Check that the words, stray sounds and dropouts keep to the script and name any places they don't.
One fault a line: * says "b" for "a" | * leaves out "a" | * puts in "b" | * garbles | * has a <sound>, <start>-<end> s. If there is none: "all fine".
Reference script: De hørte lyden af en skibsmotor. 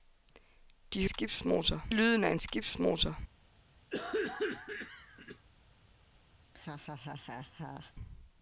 * says "skibsmotor" for "hørte"
* has a cough, 3.9-5.5 s
* has a laugh, 6.4-7.9 s